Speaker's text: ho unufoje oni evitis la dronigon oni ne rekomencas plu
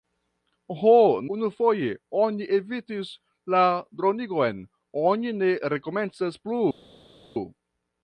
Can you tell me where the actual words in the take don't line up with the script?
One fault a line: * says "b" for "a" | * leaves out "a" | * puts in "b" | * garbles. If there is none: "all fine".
all fine